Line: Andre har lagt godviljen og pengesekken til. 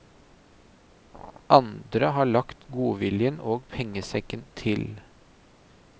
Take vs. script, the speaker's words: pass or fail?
pass